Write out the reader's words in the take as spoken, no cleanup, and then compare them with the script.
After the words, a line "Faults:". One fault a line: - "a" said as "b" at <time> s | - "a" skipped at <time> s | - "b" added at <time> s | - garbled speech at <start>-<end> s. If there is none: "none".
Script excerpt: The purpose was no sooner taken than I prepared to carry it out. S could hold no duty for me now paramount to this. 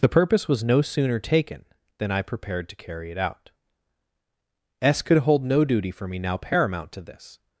The purpose was no sooner taken than I prepared to carry it out. S could hold no duty for me now paramount to this.
Faults:
none